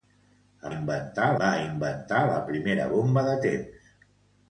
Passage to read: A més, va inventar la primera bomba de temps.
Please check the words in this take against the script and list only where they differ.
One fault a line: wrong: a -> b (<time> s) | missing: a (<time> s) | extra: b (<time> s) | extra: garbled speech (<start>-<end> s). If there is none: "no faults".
wrong: més -> inventar (0.7 s)